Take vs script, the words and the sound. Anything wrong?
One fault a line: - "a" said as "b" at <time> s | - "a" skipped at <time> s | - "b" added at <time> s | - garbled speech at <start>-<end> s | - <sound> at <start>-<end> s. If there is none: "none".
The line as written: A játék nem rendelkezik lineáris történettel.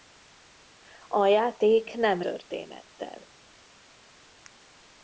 - "rendelkezik lineáris" skipped at 2.2 s